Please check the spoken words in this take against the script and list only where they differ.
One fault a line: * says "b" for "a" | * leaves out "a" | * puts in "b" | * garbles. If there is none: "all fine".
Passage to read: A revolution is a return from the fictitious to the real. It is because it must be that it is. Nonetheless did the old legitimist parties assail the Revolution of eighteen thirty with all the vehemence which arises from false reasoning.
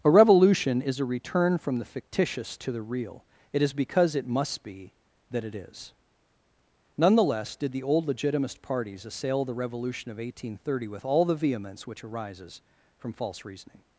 all fine